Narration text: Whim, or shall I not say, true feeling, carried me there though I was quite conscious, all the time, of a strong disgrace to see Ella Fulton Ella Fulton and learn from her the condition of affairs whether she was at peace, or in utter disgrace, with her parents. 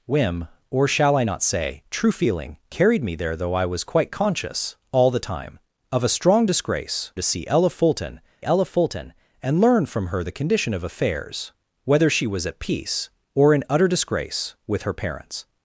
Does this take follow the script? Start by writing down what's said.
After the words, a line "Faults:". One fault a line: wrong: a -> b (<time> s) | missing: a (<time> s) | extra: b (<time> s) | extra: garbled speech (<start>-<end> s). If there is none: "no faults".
Whim, or shall I not say, true feeling, carried me there though I was quite conscious, all the time, of a strong disgrace to see Ella Fulton Ella Fulton and learn from her the condition of affairs whether she was at peace, or in utter disgrace, with her parents.
Faults:
no faults